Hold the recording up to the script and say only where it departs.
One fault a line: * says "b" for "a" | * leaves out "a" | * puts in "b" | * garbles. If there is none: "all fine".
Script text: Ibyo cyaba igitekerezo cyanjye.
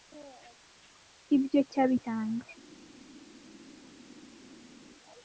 * leaves out "igitekerezo"